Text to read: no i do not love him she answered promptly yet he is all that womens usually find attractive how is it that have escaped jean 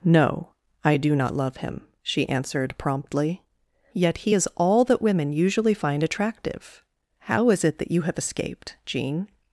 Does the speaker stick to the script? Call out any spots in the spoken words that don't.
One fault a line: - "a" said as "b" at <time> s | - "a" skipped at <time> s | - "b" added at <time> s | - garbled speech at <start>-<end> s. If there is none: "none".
- "womens" said as "women" at 5.0 s
- "you" added at 7.9 s